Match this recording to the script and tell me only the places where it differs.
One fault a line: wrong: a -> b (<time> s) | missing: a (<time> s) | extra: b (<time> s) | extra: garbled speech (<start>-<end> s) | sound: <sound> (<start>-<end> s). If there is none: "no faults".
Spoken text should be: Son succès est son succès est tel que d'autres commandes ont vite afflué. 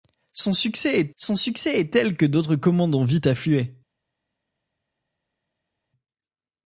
no faults